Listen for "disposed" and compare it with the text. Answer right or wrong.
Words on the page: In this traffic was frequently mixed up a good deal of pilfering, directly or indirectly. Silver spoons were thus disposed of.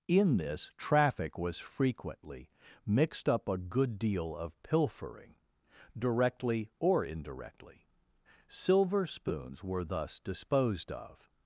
right